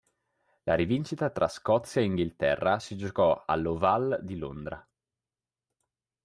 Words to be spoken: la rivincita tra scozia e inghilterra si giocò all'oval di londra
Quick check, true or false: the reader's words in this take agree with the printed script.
true